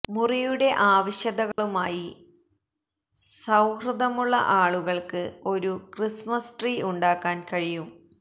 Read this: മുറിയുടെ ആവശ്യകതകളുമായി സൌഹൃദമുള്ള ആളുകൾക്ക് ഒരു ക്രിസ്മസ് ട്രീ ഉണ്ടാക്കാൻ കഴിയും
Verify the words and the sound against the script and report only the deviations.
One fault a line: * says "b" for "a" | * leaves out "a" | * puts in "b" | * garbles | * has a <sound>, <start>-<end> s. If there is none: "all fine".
* has a dropout, 1.5-1.6 s